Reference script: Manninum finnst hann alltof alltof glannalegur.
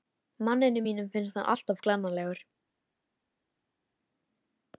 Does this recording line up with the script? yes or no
no